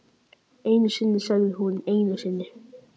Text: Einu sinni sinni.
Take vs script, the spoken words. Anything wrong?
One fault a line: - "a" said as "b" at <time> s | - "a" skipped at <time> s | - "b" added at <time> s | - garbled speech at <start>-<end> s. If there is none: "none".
- "sagði hún einu" added at 1.3 s